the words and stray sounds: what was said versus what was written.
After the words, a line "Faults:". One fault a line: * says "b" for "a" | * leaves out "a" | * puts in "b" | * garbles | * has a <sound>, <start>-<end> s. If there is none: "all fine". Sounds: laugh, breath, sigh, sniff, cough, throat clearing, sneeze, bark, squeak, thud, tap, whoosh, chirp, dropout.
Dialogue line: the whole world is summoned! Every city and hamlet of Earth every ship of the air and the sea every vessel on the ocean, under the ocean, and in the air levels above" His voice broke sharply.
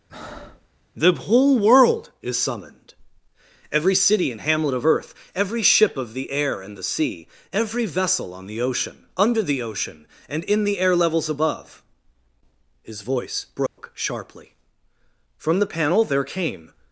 the whole world is summoned! Every city and hamlet of Earth every ship of the air and the sea every vessel on the ocean, under the ocean, and in the air levels above" His voice broke sharply. From the panel there came
Faults:
* has a breath, 0.1-0.7 s
* has a dropout, 13.7-13.8 s
* puts in "From the panel there came"